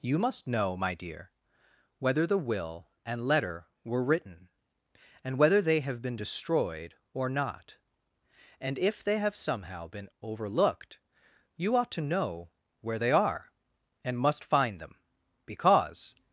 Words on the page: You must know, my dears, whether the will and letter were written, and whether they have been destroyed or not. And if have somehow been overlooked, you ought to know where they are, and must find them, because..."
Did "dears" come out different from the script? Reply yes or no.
yes